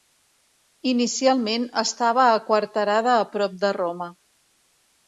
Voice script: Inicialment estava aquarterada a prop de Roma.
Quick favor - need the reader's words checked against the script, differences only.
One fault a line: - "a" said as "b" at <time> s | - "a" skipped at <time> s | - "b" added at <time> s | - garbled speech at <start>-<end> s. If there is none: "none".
none